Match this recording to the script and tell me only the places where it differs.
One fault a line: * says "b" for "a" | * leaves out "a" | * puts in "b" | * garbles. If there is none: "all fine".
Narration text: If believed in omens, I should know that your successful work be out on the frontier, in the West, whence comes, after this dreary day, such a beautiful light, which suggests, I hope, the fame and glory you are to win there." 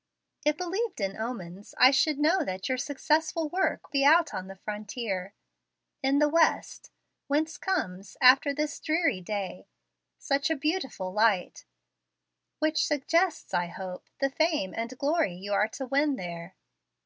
all fine